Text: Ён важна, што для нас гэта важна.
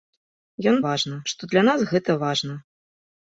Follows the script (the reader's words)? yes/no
yes